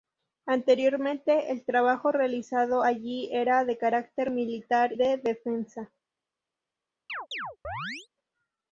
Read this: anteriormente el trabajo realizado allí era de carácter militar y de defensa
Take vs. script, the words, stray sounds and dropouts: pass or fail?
fail